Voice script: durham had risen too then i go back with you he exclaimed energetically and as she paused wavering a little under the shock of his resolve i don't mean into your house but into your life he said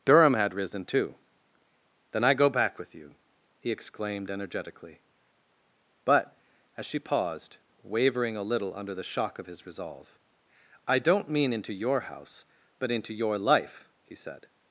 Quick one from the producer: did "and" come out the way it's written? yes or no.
no